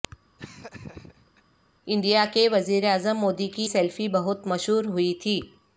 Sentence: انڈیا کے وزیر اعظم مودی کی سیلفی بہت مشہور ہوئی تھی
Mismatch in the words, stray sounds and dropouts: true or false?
true